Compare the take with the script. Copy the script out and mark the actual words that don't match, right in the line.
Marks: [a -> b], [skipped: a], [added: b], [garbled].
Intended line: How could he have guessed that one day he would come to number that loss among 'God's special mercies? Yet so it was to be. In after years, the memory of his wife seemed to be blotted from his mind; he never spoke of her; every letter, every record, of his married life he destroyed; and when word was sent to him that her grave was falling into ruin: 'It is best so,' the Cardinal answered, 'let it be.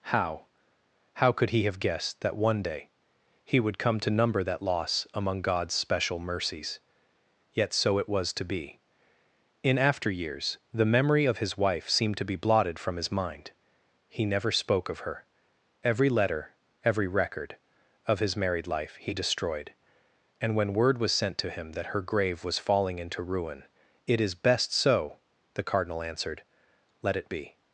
How [added: how] could he have guessed that one day he would come to number that loss among 'God's special mercies? Yet so it was to be. In after years, the memory of his wife seemed to be blotted from his mind; he never spoke of her; every letter, every record, of his married life he destroyed; and when word was sent to him that her grave was falling into ruin: 'It is best so,' the Cardinal answered, 'let it be.